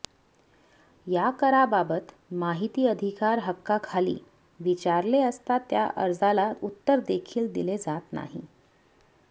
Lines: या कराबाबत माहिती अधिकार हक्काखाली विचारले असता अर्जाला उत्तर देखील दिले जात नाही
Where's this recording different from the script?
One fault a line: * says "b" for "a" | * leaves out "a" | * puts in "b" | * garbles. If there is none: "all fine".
* puts in "त्या"